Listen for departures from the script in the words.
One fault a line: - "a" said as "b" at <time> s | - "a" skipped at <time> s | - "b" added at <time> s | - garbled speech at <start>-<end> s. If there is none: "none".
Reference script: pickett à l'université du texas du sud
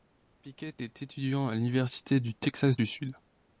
- "est étudiant" added at 0.8 s